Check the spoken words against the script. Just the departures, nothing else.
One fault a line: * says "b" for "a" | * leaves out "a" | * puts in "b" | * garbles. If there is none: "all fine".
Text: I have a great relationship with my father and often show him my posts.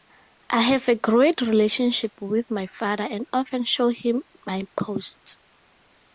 all fine